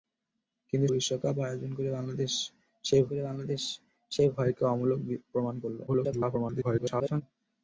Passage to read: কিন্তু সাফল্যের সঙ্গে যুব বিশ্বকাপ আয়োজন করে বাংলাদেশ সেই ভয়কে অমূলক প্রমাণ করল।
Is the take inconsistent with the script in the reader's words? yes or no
yes